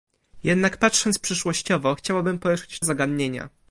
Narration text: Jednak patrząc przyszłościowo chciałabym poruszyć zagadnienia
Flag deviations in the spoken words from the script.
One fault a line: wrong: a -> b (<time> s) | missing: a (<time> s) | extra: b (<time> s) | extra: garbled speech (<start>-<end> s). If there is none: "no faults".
no faults